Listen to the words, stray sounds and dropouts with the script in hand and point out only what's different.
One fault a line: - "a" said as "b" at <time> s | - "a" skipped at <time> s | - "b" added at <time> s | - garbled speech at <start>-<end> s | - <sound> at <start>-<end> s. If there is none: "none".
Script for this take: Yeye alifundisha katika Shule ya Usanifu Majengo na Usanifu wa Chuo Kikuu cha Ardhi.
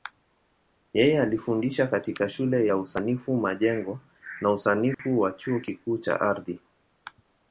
- dropout at 4.9-5.0 s